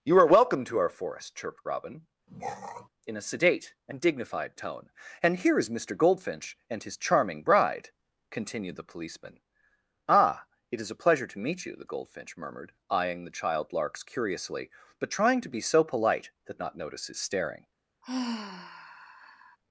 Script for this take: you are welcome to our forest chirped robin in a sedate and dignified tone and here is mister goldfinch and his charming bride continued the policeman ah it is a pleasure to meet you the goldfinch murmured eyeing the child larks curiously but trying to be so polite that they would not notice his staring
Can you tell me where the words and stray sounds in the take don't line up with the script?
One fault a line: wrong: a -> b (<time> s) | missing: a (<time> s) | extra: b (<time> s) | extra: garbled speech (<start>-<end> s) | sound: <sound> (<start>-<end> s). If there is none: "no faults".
sound: throat clearing (2.3-2.9 s)
missing: they would (16.6 s)
sound: sigh (18.0-19.6 s)